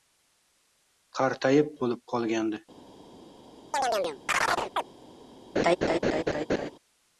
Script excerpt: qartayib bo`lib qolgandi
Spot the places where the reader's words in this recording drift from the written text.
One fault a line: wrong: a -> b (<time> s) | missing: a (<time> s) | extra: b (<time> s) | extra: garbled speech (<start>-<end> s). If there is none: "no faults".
no faults